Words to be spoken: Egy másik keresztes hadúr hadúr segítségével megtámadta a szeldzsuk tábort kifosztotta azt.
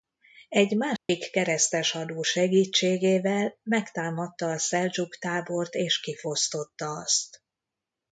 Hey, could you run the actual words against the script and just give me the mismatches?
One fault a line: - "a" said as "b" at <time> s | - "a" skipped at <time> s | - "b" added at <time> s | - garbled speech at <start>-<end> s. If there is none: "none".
- "hadúr" skipped at 2.2 s
- "és" added at 5.7 s